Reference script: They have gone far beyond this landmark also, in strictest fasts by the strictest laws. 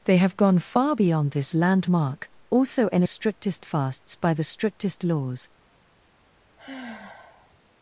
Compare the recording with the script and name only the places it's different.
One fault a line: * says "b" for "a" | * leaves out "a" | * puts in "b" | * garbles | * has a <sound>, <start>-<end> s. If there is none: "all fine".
* has a sigh, 6.6-7.6 s